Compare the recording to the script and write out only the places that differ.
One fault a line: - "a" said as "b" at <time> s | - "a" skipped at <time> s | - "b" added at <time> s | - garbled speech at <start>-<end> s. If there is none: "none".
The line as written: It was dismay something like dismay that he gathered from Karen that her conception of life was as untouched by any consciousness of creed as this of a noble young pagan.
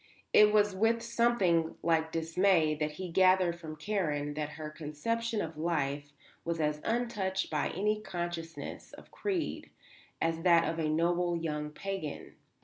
- "dismay" said as "with" at 0.8 s
- "this" said as "that" at 10.4 s